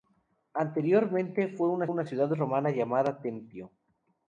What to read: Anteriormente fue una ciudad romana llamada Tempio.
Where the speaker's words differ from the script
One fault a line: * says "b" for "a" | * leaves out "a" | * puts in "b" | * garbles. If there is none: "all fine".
* puts in "una"